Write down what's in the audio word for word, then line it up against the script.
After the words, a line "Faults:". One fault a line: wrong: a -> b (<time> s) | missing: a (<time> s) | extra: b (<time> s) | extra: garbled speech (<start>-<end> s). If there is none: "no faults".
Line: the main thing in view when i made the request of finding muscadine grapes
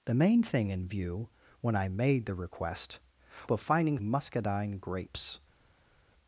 the main thing in view when i made the request of finding muscadine grapes
Faults:
no faults